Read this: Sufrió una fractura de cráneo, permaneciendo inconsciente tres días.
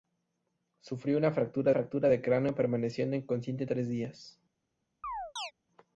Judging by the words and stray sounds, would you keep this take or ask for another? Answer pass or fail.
fail